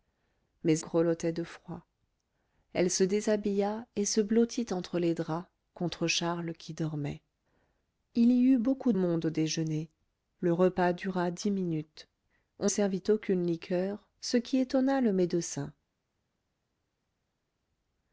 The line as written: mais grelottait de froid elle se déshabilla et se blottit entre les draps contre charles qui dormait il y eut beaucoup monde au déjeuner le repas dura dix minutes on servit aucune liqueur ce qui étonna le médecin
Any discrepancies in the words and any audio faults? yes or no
no